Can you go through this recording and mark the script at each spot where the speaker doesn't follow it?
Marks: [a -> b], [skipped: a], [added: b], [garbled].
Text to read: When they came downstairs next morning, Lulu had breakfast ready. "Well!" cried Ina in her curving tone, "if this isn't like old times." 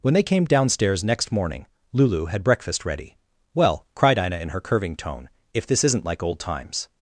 When they came downstairs next morning, Lulu had breakfast ready. "Well!" cried Ina in her curving tone, "if this isn't like old times."